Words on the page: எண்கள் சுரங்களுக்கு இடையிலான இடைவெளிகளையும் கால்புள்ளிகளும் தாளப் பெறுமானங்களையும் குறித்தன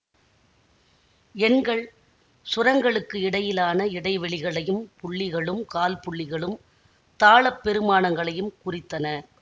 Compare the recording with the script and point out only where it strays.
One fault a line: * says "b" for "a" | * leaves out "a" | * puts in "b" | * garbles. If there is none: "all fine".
* puts in "புள்ளிகளும்"